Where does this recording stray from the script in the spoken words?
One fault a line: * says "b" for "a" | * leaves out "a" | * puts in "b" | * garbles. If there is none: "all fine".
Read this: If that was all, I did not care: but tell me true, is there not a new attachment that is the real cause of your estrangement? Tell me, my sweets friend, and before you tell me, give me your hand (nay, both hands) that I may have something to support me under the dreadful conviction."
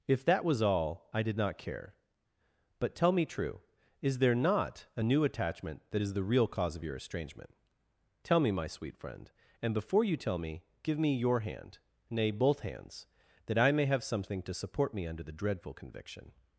* says "sweet" for "sweets"